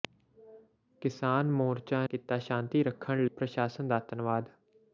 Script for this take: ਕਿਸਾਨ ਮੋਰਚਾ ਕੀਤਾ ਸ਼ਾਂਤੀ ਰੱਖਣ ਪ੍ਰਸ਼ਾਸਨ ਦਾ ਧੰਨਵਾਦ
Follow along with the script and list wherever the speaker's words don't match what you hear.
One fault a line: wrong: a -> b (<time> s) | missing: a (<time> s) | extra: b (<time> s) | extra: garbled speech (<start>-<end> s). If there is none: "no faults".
no faults